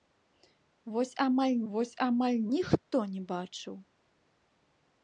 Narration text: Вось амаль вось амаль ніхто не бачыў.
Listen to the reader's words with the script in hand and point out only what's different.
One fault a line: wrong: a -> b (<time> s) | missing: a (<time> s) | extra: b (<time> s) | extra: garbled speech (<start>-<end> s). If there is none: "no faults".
no faults